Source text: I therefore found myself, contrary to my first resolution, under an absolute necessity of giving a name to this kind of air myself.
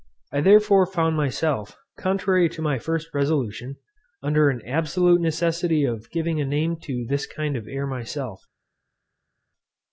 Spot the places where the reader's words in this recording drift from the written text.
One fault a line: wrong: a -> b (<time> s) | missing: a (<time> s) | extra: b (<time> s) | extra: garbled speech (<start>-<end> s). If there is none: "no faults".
no faults